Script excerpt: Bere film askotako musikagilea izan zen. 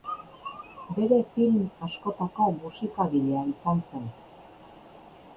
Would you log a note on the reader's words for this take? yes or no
no